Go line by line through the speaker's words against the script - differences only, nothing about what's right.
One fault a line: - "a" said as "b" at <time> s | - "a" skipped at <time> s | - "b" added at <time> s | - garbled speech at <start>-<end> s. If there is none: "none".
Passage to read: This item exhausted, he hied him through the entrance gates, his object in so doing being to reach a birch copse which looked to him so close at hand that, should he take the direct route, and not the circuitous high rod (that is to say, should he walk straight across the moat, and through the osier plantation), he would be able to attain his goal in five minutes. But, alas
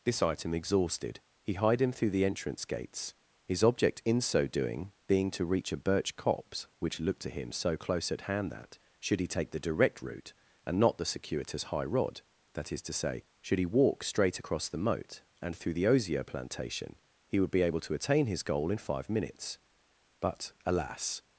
none